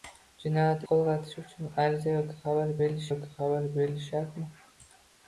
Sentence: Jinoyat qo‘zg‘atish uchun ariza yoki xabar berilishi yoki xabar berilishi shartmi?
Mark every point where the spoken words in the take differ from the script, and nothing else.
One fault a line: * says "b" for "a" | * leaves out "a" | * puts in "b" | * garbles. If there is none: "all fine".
all fine